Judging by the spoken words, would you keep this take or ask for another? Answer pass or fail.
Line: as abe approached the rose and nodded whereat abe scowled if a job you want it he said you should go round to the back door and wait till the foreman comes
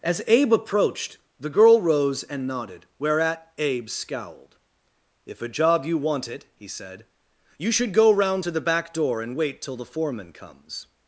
fail